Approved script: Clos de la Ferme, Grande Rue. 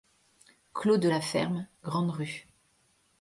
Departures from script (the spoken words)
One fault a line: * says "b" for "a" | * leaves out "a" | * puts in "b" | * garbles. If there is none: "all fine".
all fine